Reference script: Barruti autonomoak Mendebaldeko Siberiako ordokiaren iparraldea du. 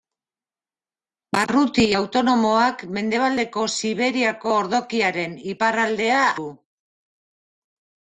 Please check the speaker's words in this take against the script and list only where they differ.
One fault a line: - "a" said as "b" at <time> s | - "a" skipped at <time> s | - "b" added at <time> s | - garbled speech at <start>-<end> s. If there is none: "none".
none